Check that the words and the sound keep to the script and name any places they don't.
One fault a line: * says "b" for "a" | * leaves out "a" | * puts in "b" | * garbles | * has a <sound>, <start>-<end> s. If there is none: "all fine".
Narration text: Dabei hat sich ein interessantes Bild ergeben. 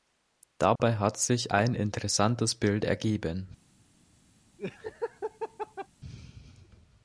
* has a dropout, 0.8-0.8 s
* has a laugh, 4.6-5.9 s